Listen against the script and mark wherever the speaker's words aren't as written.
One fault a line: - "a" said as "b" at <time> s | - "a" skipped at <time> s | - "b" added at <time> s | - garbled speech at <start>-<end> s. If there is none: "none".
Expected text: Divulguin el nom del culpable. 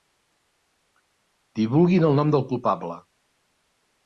none